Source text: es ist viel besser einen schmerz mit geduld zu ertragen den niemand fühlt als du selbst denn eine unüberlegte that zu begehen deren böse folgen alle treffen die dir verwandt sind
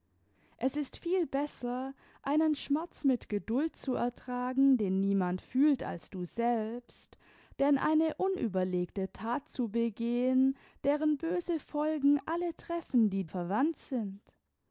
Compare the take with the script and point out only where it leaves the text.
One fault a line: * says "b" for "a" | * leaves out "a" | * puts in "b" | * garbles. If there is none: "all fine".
* leaves out "dir"